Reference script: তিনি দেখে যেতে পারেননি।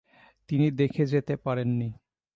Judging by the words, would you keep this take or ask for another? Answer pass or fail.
pass